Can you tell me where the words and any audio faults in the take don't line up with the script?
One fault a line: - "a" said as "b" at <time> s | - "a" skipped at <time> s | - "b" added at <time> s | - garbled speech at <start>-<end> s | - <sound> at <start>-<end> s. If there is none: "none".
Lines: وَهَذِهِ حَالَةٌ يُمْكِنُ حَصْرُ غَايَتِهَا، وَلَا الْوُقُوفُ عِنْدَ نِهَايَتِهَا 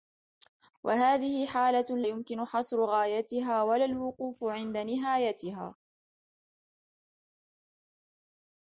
none